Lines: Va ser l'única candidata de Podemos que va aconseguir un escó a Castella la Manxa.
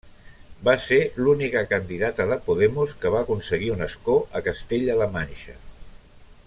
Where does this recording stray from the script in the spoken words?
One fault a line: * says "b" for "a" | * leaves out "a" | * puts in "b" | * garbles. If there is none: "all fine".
all fine